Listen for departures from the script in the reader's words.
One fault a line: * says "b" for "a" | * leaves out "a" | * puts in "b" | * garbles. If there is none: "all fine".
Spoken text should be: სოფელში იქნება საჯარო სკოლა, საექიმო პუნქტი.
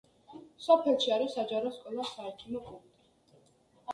* says "არის" for "იქნება"